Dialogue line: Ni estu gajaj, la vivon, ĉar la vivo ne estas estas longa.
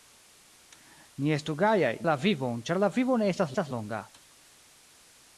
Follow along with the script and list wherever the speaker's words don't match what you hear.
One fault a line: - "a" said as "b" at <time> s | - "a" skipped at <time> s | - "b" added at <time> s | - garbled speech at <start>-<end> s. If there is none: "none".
none